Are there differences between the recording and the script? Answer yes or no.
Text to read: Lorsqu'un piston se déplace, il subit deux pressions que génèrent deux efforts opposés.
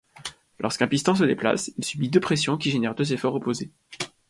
yes